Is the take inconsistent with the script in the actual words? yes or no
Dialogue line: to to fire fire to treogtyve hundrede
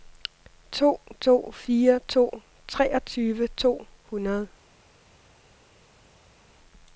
yes